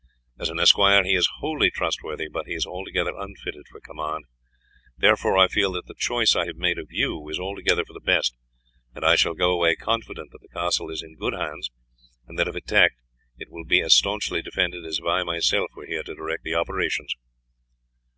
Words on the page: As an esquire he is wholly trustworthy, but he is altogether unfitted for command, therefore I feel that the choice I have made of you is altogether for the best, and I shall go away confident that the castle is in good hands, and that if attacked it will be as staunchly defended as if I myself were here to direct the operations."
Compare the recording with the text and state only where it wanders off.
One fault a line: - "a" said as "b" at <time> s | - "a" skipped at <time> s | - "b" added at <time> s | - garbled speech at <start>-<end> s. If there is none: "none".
none